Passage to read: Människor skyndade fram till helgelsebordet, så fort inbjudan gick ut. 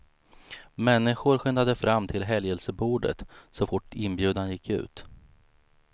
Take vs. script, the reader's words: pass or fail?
pass